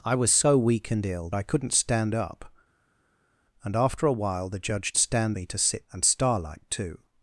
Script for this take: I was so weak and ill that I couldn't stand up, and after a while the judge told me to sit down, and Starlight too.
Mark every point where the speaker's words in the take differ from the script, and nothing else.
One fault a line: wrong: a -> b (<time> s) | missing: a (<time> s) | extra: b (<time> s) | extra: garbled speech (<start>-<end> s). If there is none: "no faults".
missing: that (1.3 s)
wrong: told -> stand (5.0 s)
missing: down (5.9 s)